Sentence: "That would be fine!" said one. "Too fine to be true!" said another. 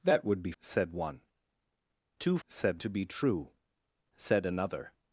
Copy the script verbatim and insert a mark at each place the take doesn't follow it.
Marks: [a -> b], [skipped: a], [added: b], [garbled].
"That would be [skipped: fine!"] said one. "Too [fine -> said] to be true!" said another.